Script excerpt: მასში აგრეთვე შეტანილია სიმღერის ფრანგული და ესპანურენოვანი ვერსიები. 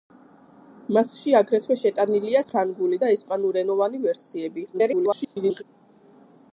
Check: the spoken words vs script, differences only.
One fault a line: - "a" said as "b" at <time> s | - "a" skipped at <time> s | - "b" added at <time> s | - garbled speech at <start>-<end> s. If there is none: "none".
- "სიმღერის" skipped at 2.4 s
- garbled speech at 4.7-5.6 s